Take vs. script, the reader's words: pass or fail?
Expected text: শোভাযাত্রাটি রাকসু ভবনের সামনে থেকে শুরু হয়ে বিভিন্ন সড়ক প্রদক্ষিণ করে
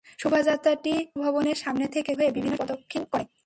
fail